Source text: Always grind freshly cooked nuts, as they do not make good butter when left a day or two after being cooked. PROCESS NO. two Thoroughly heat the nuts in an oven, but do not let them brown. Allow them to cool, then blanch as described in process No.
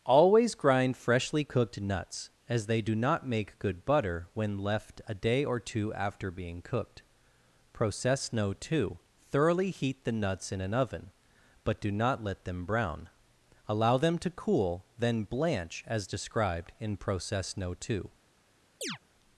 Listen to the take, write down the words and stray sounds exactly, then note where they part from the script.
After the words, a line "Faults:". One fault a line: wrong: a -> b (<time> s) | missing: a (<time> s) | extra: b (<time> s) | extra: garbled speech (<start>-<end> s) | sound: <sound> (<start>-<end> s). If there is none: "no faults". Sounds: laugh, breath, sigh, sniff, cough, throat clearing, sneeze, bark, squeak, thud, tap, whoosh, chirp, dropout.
Always grind freshly cooked nuts, as they do not make good butter when left a day or two after being cooked. PROCESS NO. two Thoroughly heat the nuts in an oven, but do not let them brown. Allow them to cool, then blanch as described in process No. two
Faults:
extra: two (17.7 s)
sound: chirp (18.8-19.0 s)